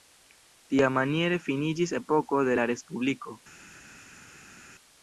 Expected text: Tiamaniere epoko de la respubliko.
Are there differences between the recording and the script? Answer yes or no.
yes